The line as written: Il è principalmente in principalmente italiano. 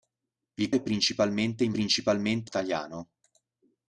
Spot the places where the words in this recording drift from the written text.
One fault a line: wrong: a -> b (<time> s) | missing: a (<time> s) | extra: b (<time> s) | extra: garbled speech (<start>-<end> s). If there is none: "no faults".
no faults